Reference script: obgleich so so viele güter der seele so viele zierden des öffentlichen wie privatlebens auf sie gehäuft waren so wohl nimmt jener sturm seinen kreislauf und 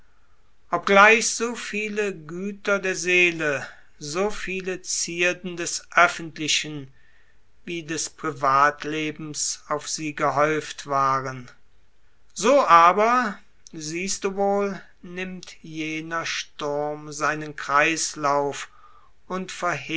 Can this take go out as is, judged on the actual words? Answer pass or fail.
fail